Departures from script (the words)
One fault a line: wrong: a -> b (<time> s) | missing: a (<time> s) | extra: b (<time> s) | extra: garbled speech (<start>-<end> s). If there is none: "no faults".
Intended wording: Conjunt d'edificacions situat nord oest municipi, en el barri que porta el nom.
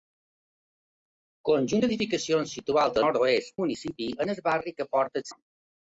no faults